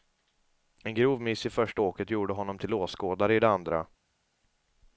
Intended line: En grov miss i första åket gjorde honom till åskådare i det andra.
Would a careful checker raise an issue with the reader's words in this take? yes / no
no